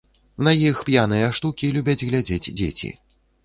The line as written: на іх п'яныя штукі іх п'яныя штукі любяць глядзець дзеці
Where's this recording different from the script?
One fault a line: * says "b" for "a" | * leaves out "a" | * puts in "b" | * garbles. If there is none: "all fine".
* leaves out "іх п'яныя штукі"